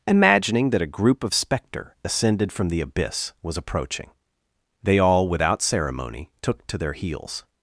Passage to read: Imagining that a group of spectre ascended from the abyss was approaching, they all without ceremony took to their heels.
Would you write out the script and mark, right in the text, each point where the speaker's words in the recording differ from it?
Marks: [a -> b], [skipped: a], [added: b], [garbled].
Imagining that a group of spectre ascended from the abyss was approaching, they all without ceremony took to their heels.